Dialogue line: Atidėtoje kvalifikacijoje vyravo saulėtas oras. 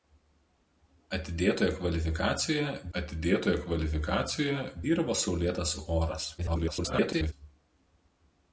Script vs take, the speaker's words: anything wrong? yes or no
yes